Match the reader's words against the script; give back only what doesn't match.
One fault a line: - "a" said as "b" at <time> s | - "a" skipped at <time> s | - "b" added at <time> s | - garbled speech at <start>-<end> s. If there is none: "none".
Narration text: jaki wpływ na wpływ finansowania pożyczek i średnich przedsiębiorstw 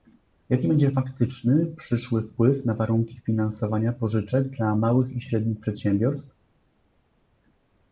- "będzie faktyczny przyszły" added at 0.7 s
- "wpływ" said as "warunki" at 2.7 s
- "dla małych" added at 4.5 s